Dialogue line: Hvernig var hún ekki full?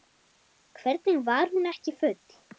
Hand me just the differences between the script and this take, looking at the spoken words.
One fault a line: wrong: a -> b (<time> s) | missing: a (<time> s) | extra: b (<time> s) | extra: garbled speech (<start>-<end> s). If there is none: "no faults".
no faults